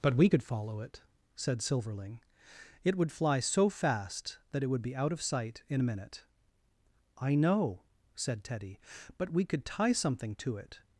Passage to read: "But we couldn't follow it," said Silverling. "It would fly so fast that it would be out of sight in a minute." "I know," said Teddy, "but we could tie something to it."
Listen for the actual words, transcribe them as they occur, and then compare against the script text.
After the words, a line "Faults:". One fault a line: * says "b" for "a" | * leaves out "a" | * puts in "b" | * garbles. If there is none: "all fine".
"But we could follow it," said Silverling. "It would fly so fast that it would be out of sight in a minute." "I know," said Teddy, "but we could tie something to it."
Faults:
* says "could" for "couldn't"